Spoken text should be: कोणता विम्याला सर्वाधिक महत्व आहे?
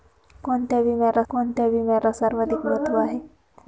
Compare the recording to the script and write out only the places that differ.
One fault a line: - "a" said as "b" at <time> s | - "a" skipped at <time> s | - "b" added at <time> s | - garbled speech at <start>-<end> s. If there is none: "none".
- "कोणता विम्याला" added at 1.3 s